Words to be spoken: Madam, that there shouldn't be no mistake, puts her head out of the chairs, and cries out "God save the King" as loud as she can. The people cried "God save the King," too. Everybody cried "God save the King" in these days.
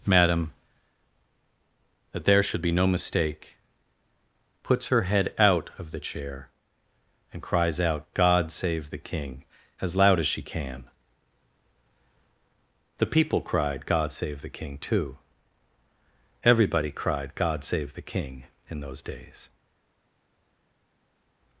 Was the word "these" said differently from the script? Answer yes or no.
yes